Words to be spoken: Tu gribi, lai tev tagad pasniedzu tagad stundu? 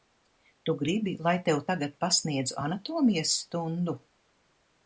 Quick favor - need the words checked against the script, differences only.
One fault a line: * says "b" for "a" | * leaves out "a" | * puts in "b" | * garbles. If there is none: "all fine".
* says "anatomijas" for "tagad"